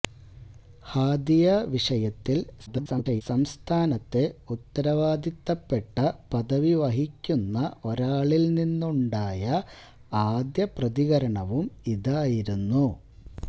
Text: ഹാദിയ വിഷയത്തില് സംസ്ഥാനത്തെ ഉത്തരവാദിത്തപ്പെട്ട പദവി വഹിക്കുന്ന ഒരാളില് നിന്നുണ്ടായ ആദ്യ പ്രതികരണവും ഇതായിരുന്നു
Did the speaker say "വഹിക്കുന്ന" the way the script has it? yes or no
yes